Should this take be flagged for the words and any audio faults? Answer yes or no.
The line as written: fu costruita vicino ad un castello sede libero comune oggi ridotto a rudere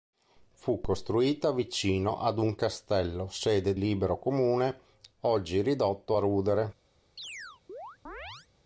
yes